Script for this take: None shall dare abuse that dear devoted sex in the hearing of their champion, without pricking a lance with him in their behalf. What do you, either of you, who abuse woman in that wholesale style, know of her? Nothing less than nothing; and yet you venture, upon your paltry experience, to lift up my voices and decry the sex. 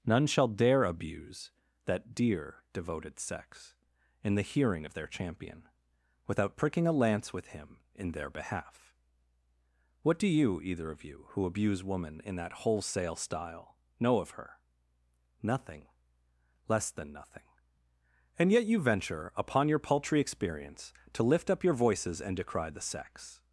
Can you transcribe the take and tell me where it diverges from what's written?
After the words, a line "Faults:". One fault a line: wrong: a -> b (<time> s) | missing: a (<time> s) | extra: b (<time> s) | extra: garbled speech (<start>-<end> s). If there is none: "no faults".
None shall dare abuse that dear devoted sex in the hearing of their champion, without pricking a lance with him in their behalf. What do you, either of you, who abuse woman in that wholesale style, know of her? Nothing less than nothing; and yet you venture, upon your paltry experience, to lift up your voices and decry the sex.
Faults:
wrong: my -> your (21.6 s)